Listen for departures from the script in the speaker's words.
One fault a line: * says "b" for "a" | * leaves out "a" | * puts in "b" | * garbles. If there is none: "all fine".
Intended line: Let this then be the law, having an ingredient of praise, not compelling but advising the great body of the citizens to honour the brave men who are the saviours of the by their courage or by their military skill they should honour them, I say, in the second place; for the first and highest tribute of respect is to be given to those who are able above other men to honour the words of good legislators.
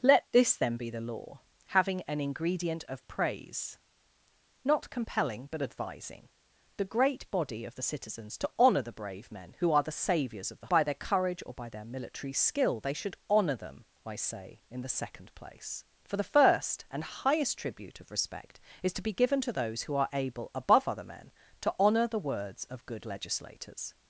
all fine